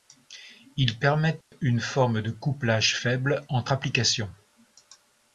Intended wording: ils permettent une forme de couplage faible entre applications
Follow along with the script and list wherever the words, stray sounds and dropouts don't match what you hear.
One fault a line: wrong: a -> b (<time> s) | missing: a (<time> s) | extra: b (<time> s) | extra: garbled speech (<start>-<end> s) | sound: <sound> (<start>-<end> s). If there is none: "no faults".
sound: dropout (1.4-1.5 s)